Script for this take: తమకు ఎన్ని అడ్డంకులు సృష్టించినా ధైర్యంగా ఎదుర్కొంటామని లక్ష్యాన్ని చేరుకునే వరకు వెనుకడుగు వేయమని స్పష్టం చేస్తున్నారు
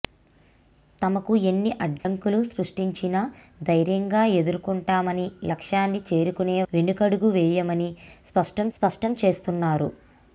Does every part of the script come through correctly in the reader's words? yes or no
no